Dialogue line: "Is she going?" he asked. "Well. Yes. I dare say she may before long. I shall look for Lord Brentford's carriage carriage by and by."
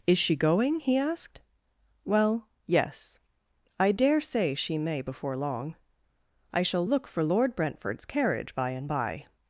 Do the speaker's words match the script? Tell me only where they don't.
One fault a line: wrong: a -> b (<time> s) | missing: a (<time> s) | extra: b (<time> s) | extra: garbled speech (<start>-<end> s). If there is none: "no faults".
missing: carriage (8.5 s)